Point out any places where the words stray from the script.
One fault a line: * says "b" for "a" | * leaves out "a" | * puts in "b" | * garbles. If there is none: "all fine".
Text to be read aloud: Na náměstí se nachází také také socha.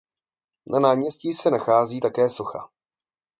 * leaves out "také"